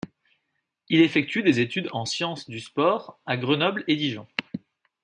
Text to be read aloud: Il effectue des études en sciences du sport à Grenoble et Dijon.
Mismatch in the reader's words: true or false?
false